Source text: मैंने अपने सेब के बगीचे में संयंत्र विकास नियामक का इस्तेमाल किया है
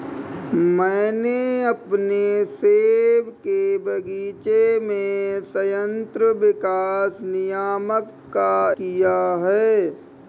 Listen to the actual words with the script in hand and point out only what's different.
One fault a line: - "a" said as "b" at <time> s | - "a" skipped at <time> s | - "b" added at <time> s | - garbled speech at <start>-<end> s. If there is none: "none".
- "इस्तेमाल" skipped at 8.7 s